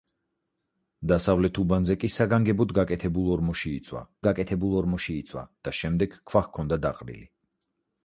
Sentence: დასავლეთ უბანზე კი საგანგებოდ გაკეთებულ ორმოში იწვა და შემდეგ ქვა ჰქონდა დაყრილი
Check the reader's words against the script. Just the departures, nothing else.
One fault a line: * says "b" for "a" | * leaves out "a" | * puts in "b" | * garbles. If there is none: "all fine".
* puts in "გაკეთებულ ორმოში იწვა"